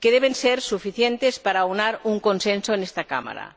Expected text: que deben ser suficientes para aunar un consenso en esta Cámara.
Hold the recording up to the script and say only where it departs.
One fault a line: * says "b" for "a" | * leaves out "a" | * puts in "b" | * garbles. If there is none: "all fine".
all fine